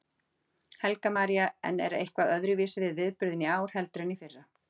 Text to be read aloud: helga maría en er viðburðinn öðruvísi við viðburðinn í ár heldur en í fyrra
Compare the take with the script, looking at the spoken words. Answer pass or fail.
fail